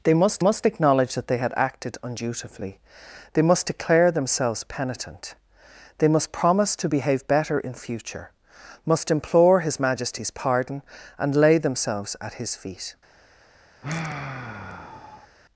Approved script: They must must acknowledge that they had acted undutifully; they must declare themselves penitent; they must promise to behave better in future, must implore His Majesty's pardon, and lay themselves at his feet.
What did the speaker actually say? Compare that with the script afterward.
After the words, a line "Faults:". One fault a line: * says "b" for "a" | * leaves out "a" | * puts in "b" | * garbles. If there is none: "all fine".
They must must acknowledge that they had acted undutifully; they must declare themselves penitent; they must promise to behave better in future, must implore His Majesty's pardon, and lay themselves at his feet.
Faults:
all fine